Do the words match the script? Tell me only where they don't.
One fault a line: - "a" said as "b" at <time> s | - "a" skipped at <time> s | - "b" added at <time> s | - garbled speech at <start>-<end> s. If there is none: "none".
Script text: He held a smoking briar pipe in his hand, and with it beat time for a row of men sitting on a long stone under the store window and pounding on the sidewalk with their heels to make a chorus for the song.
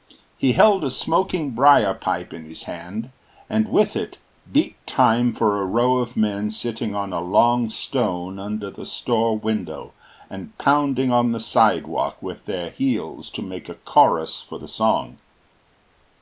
none